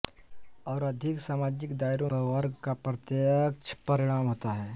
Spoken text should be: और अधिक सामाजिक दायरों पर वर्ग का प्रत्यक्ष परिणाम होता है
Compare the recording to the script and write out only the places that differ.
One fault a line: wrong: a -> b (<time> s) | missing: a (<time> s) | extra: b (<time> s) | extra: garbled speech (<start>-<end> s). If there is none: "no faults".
no faults